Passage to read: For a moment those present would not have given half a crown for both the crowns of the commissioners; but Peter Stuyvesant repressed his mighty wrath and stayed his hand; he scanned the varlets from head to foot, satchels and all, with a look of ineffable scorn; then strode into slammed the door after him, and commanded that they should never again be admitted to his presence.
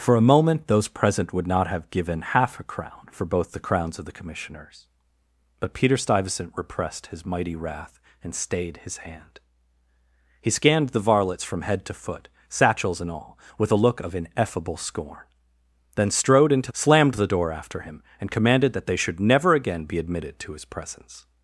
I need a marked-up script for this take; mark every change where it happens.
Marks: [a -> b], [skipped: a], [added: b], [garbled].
For a moment those present would not have given half a crown for both the crowns of the commissioners; but Peter Stuyvesant repressed his mighty wrath and stayed his hand; he scanned the varlets from head to foot, satchels and all, with a look of ineffable scorn; then strode into slammed the door after him, and commanded that they should never again be admitted to his presence.